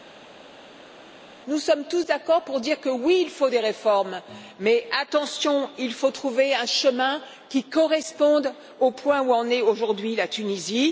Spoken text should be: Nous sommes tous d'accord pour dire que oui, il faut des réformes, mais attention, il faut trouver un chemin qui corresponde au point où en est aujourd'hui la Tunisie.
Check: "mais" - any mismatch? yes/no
no